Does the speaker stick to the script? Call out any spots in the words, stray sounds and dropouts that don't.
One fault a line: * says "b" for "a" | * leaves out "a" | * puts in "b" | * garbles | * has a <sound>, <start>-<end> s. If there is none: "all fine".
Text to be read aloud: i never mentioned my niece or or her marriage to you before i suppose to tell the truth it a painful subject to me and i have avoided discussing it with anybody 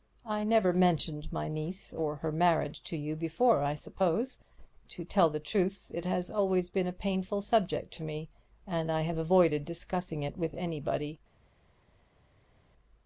* leaves out "or"
* puts in "has always been"